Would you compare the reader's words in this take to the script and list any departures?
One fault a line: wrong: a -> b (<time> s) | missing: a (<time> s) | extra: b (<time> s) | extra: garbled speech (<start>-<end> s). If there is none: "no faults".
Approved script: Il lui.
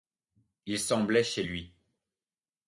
extra: semblait chez (0.8 s)